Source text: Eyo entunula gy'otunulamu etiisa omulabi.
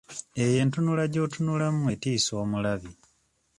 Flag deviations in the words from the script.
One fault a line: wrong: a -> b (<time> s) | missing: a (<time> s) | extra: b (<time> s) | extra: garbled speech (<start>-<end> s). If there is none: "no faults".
no faults